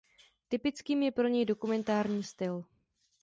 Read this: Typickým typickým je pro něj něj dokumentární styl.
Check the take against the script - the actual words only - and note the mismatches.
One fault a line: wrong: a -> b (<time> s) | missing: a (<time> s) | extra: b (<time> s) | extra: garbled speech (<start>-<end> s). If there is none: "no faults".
missing: typickým (1.0 s)
missing: něj (1.4 s)